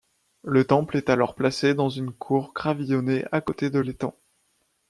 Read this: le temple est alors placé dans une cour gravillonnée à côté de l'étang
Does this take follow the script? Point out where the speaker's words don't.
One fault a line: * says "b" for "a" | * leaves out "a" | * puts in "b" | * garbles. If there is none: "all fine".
all fine